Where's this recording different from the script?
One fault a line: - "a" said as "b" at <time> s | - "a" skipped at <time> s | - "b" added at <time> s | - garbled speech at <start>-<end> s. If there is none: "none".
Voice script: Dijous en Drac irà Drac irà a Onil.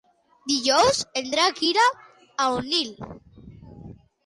- "Drac irà" skipped at 1.9 s